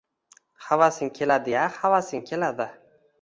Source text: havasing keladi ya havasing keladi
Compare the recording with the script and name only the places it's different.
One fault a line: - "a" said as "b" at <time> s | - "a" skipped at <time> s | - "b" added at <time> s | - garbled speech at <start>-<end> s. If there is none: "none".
none